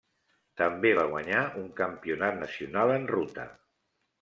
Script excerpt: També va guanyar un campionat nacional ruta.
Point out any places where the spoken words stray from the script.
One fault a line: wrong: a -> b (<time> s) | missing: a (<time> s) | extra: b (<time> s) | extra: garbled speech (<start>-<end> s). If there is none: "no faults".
extra: en (3.0 s)